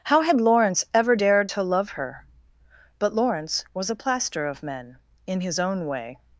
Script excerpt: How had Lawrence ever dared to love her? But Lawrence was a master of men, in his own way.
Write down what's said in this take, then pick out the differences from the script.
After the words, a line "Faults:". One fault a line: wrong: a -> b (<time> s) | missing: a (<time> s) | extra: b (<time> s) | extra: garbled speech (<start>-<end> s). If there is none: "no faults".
How had Lawrence ever dared to love her? But Lawrence was a plaster of men, in his own way.
Faults:
wrong: master -> plaster (4.0 s)